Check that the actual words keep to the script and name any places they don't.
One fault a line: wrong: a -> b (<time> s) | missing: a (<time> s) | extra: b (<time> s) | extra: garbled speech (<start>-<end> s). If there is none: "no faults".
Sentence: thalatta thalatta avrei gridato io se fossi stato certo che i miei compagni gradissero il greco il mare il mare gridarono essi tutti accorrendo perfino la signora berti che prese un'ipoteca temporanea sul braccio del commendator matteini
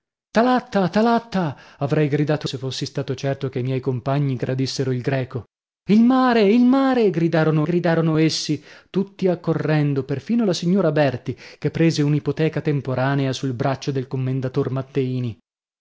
missing: io (2.5 s)
extra: gridarono (7.6 s)